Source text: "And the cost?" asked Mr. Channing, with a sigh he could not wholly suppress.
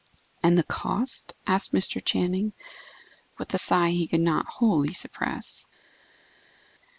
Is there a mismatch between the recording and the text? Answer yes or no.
no